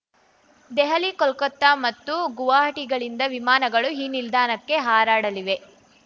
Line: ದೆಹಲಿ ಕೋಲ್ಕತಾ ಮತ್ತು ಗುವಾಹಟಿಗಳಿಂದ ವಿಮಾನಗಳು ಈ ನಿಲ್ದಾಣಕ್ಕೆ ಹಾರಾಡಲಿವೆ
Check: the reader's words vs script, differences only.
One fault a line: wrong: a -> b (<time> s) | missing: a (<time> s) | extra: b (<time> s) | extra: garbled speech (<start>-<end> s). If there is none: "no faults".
no faults